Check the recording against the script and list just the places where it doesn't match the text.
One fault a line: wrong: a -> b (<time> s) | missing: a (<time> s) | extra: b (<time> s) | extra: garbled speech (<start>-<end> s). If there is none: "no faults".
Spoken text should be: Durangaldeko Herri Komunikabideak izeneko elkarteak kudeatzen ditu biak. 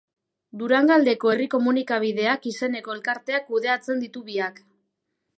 no faults